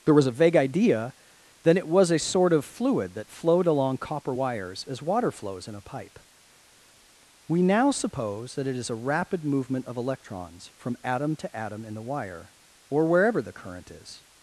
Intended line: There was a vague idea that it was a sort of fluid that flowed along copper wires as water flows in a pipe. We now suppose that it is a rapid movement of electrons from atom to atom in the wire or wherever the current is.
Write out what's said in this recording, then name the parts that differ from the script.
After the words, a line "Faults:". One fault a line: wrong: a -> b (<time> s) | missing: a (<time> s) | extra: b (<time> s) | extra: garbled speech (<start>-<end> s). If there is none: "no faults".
There was a vague idea then it was a sort of fluid that flowed along copper wires as water flows in a pipe. We now suppose that it is a rapid movement of electrons from atom to atom in the wire or wherever the current is.
Faults:
wrong: that -> then (1.6 s)